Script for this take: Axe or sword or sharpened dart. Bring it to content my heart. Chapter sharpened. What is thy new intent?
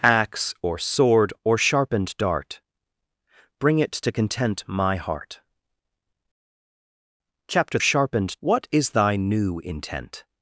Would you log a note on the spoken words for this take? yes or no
no